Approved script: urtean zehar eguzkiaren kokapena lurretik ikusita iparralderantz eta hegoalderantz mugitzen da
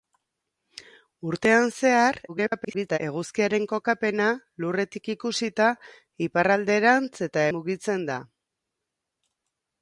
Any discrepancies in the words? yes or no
yes